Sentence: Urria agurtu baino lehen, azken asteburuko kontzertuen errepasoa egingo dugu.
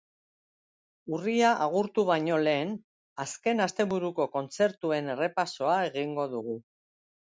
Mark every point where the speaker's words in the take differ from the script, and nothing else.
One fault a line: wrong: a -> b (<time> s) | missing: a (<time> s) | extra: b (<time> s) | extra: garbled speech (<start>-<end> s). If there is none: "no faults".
no faults